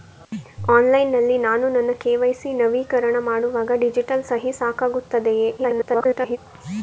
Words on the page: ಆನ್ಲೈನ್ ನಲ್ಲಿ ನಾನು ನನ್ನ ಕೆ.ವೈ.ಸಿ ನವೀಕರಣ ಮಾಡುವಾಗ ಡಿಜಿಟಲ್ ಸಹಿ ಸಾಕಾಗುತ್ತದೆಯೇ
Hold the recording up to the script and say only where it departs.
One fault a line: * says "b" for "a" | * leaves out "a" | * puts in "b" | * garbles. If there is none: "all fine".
* garbles